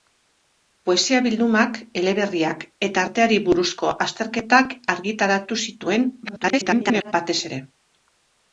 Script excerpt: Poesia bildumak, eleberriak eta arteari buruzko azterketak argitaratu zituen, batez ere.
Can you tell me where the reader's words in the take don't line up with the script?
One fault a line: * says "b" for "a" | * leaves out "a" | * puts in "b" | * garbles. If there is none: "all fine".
* garbles